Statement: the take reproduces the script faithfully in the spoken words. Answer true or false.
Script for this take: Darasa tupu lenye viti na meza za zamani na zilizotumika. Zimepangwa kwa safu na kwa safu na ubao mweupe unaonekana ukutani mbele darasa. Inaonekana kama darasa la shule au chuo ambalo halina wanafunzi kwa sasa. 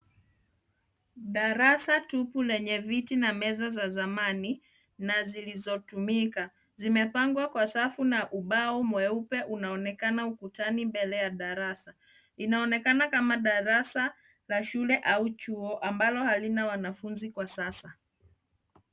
false